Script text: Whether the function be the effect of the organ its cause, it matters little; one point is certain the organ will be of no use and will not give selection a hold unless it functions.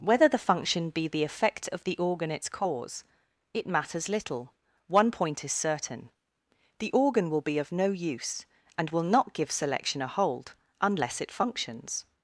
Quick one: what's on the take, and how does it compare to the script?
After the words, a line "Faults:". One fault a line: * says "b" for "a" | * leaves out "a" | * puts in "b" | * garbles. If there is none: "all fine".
Whether the function be the effect of the organ its cause, it matters little; one point is certain the organ will be of no use and will not give selection a hold unless it functions.
Faults:
all fine